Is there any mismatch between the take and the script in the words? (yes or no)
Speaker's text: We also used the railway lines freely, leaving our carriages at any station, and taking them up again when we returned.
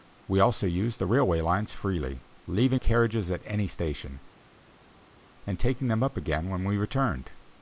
yes